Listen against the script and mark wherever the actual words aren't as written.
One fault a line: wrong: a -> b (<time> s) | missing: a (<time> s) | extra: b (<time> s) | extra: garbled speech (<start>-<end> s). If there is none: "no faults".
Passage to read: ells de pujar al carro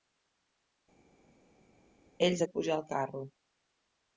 no faults